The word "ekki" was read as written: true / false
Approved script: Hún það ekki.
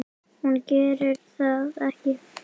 true